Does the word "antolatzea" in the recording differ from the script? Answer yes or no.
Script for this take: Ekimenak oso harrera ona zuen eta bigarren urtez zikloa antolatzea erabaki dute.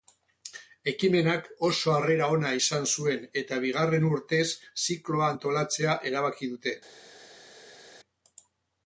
no